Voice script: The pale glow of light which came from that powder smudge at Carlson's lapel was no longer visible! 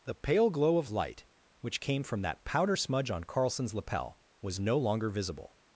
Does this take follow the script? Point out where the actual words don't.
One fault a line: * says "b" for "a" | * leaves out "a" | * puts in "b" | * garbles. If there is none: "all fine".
* says "on" for "at"